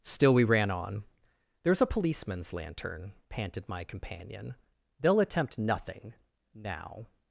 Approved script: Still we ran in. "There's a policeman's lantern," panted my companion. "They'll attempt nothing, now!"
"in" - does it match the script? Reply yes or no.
no